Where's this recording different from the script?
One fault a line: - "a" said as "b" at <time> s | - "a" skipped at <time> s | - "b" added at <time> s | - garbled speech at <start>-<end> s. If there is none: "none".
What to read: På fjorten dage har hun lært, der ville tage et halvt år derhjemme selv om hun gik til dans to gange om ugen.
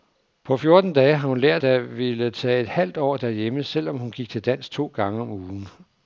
none